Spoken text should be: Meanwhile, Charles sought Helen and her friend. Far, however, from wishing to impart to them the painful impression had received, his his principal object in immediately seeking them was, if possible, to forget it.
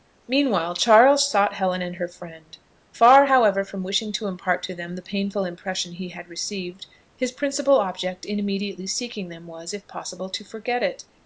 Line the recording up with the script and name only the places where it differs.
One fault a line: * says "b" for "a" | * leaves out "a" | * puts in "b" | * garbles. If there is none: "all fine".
* puts in "he"
* leaves out "his"